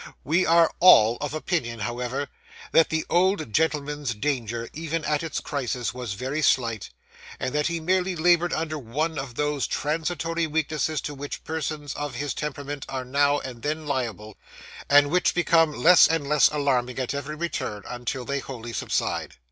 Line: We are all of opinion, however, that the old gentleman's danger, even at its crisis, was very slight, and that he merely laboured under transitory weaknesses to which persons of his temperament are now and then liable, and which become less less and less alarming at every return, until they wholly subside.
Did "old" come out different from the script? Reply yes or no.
no